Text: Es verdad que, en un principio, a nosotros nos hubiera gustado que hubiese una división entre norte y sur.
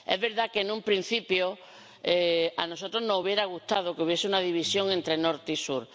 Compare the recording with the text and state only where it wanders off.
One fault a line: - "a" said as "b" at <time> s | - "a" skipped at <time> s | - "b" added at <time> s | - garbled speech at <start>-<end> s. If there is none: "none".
none